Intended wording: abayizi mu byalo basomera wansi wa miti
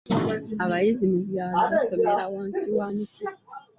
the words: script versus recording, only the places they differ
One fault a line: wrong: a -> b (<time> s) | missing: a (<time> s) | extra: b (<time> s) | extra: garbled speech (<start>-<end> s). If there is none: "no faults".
no faults